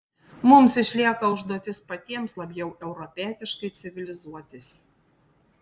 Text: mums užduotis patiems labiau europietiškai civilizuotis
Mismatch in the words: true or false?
true